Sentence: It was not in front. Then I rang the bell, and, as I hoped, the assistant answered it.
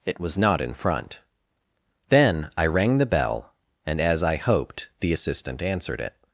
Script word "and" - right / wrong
right